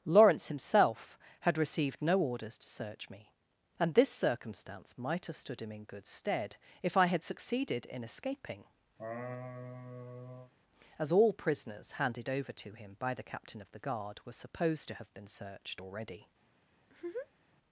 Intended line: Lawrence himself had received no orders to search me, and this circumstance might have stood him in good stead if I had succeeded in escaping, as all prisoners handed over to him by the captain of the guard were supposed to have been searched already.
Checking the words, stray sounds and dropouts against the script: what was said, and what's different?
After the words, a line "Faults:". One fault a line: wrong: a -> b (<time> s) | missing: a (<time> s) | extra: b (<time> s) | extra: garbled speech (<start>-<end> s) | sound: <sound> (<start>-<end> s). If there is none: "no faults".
Lawrence himself had received no orders to search me, and this circumstance might have stood him in good stead if I had succeeded in escaping, as all prisoners handed over to him by the captain of the guard were supposed to have been searched already.
Faults:
sound: laugh (9.0-10.5 s)
sound: laugh (16.8-17.5 s)